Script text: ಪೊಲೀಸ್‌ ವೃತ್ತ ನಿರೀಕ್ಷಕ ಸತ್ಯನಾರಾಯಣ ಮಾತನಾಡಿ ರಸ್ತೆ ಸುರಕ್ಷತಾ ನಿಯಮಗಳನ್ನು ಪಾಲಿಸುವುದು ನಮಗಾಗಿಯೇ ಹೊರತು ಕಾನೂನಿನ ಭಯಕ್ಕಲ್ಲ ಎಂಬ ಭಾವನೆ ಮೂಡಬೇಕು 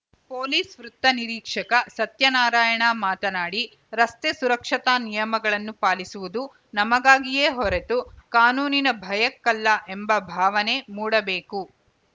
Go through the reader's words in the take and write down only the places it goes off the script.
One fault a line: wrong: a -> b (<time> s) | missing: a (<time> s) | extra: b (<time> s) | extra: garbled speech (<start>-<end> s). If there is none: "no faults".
no faults